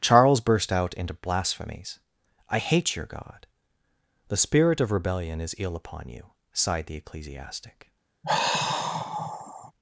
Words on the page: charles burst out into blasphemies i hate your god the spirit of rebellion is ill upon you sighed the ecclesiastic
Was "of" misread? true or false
false